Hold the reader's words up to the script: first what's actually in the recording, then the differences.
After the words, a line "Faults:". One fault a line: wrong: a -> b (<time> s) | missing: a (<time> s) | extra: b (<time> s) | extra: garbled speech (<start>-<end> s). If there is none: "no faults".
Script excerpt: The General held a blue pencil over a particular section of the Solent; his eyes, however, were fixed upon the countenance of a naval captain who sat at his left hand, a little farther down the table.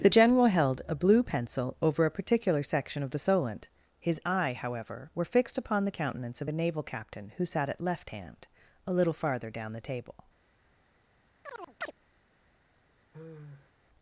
The General held a blue pencil over a particular section of the Solent; his eye, however, were fixed upon the countenance of a naval captain who sat at left hand, a little farther down the table.
Faults:
wrong: eyes -> eye (4.2 s)
missing: his (7.8 s)